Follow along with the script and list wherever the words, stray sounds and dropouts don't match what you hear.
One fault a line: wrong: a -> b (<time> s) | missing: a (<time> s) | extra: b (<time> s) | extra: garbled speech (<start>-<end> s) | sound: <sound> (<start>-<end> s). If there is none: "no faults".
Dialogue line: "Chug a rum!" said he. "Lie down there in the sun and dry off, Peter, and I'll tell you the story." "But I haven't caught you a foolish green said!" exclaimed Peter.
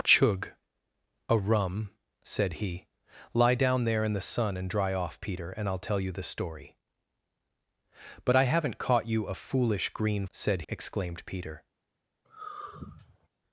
sound: sigh (12.2-13.3 s)